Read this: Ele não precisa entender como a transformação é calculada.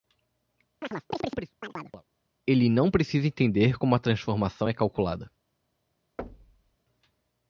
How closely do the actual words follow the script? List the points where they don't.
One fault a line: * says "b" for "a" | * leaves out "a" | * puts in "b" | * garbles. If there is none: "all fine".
all fine